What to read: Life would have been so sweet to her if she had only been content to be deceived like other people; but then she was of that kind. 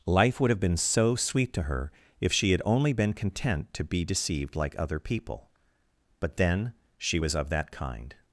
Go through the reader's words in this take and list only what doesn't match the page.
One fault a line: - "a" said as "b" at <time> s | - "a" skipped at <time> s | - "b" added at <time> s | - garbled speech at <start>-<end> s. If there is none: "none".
none